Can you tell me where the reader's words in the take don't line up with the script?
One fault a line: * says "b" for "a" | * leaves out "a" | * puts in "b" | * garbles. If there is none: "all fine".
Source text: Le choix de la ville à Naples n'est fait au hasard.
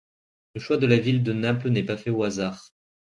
* says "de" for "à"
* puts in "pas"